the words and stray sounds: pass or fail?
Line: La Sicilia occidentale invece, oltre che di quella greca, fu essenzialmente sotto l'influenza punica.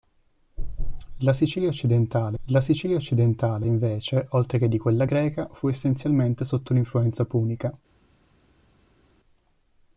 fail